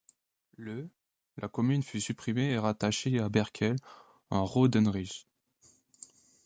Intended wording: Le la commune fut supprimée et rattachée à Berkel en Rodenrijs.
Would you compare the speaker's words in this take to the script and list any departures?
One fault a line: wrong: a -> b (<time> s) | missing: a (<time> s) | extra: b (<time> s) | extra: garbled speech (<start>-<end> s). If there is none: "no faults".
no faults